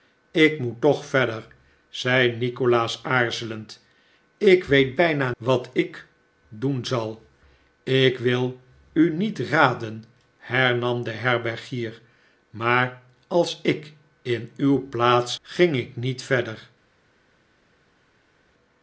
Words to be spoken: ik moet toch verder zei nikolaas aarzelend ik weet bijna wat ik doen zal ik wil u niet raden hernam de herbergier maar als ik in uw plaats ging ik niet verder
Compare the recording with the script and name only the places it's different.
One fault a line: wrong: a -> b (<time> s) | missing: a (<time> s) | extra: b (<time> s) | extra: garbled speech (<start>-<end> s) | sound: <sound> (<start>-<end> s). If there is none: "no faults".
no faults